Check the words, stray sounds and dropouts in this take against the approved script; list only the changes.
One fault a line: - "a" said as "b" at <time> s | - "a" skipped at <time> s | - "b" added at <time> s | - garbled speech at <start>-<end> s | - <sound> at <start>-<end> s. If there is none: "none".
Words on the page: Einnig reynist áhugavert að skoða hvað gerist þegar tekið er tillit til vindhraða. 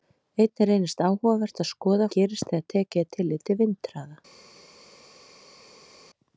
- "hvað" skipped at 2.1 s